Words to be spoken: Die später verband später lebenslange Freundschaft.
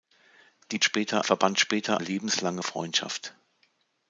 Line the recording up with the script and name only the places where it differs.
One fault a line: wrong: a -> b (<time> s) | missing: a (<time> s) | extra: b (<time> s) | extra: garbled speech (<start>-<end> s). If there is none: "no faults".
no faults